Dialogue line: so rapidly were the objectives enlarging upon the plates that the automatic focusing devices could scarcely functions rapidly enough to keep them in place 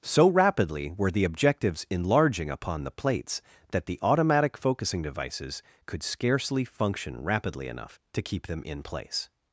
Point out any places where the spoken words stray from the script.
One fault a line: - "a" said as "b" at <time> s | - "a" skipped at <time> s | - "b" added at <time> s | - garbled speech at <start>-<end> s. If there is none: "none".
- "functions" said as "function" at 6.6 s